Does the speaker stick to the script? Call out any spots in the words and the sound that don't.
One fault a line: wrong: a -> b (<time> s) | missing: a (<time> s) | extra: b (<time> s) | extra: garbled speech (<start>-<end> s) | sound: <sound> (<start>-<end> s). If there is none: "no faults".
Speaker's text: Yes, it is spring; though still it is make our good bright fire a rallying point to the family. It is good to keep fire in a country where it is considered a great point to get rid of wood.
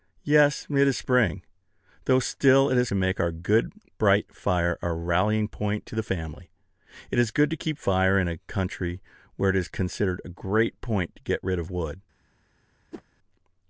sound: whoosh (12.9-13.0 s)